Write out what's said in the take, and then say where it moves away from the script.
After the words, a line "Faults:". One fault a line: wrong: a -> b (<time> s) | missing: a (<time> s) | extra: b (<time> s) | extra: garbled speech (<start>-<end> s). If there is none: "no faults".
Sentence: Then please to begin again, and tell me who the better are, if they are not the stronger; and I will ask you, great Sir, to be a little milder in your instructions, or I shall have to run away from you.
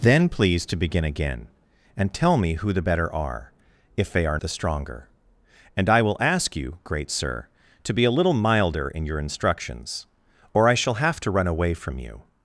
Then please to begin again, and tell me who the better are, if they are the stronger; and I will ask you, great Sir, to be a little milder in your instructions, or I shall have to run away from you.
Faults:
missing: not (4.4 s)